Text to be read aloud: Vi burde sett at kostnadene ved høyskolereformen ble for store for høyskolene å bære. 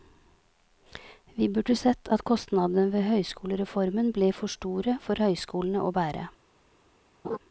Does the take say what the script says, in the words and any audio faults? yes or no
no